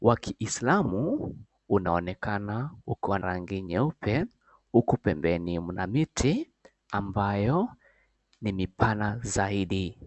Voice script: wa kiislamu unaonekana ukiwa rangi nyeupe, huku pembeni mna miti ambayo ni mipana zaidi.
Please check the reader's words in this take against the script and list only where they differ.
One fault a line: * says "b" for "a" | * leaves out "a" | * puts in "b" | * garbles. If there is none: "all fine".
all fine